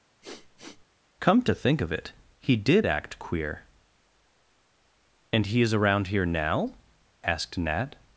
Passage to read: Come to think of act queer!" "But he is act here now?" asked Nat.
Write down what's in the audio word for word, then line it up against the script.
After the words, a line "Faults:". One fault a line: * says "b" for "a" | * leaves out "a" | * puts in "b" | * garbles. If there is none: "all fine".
Come to think of it he did act queer!" "And he is around here now?" asked Nat.
Faults:
* puts in "it he did"
* says "And" for "But"
* says "around" for "act"